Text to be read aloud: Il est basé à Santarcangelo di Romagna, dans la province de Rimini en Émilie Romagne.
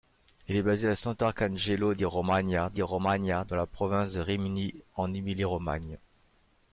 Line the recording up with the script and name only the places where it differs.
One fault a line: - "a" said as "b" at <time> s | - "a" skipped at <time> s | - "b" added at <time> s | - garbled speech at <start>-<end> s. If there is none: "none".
- "di Romagna" added at 2.7 s